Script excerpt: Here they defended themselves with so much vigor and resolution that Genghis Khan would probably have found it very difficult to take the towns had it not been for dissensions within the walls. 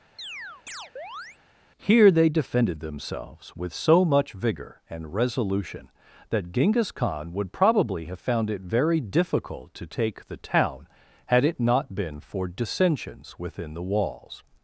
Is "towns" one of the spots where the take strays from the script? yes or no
yes